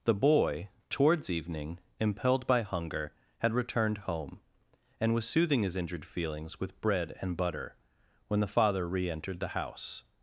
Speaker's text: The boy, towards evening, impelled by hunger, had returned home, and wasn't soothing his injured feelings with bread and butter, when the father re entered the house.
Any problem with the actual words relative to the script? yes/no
yes